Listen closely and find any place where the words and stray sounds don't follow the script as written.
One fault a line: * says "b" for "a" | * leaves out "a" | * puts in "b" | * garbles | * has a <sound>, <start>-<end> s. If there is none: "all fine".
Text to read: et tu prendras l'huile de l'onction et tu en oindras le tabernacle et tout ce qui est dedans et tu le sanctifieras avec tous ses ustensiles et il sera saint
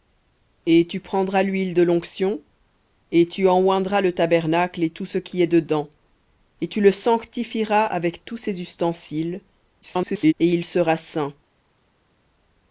* garbles